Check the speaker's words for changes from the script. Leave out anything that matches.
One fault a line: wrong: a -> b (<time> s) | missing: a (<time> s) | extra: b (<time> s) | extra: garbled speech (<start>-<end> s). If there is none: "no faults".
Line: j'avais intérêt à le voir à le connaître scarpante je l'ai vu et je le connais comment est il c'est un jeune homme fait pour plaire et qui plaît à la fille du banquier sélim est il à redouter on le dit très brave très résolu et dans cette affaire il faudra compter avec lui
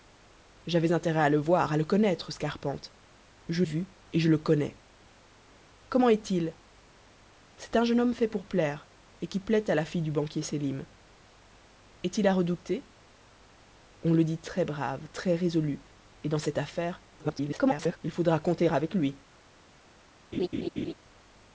missing: l'ai (3.6 s)
extra: garbled speech (17.2-18.0 s)